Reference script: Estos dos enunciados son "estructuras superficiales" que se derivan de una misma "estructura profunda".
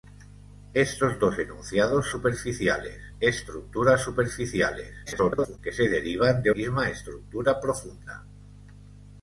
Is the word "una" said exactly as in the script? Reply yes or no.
no